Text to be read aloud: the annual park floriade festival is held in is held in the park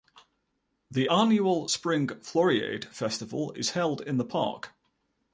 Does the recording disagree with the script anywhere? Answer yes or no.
yes